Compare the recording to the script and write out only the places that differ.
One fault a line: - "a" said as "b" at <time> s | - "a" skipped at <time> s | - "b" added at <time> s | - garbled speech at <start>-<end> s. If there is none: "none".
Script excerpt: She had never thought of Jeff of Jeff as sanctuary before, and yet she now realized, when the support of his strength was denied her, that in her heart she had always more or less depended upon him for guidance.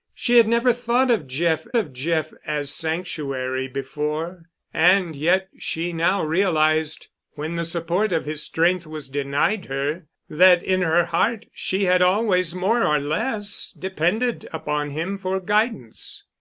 none